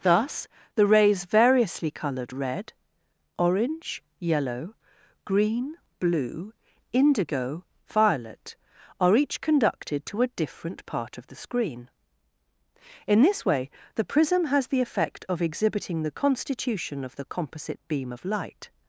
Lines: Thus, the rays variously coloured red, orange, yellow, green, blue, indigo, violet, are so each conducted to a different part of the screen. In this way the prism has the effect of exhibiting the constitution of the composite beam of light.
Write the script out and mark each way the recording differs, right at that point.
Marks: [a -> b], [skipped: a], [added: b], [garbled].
Thus, the rays variously coloured red, orange, yellow, green, blue, indigo, violet, are [skipped: so] each conducted to a different part of the screen. In this way the prism has the effect of exhibiting the constitution of the composite beam of light.